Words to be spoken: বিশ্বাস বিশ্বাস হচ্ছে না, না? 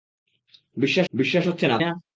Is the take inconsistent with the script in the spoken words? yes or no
no